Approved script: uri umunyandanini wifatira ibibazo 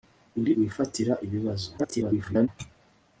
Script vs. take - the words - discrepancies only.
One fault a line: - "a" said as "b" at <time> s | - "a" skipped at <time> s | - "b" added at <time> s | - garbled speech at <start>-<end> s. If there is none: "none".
- "umunyandanini" skipped at 0.5 s
- garbled speech at 1.8-2.5 s